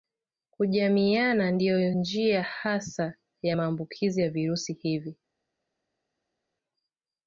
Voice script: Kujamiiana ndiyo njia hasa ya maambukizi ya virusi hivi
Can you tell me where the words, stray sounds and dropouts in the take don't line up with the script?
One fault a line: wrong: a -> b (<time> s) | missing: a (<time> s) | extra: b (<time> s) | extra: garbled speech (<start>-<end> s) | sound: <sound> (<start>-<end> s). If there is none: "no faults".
no faults